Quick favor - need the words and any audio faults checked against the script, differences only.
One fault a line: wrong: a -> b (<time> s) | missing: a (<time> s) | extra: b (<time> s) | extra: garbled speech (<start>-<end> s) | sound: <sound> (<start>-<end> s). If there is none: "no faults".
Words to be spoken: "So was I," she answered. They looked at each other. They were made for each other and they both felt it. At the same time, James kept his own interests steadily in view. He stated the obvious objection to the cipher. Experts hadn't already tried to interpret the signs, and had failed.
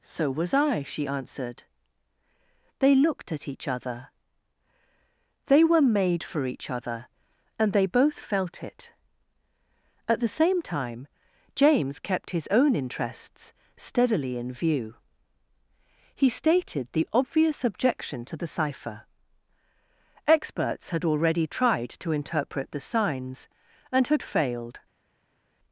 wrong: hadn't -> had (20.9 s)